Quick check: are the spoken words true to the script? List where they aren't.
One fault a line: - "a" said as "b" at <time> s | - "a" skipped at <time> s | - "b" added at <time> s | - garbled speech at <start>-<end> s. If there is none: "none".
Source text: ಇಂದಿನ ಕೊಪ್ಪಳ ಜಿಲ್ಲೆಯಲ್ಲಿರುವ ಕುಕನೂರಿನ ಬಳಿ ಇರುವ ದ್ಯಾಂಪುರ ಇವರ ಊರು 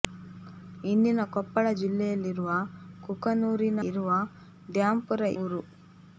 - "ಬಳಿ" skipped at 3.8 s
- "ಇವರ" skipped at 5.2 s